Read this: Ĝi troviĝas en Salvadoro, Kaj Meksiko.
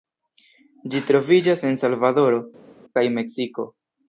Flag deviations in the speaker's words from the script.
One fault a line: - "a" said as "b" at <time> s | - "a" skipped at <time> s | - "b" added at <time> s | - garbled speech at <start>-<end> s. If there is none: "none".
none